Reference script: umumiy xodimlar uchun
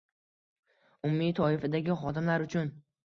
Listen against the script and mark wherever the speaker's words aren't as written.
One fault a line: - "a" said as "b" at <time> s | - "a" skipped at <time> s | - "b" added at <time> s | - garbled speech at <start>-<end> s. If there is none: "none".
- "toifadagi" added at 1.4 s